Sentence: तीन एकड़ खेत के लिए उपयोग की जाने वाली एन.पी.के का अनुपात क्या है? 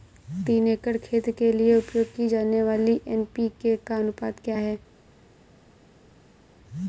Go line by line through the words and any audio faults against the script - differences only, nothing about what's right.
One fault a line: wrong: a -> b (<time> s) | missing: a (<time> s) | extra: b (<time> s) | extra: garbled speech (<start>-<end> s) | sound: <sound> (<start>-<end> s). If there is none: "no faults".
no faults